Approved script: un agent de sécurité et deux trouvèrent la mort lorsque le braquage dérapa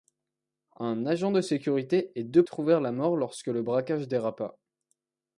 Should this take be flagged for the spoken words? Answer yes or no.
no